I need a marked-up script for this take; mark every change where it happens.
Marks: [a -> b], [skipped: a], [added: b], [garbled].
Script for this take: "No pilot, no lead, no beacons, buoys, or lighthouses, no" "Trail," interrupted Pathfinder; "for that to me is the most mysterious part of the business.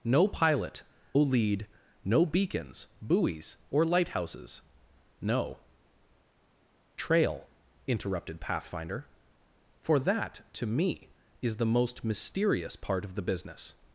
"No pilot, [skipped: no] lead, no beacons, buoys, or lighthouses, no" "Trail," interrupted Pathfinder; "for that to me is the most mysterious part of the business.